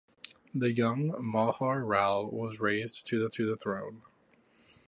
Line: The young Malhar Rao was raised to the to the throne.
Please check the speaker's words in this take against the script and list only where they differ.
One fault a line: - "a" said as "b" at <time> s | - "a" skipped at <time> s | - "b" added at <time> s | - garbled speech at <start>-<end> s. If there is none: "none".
none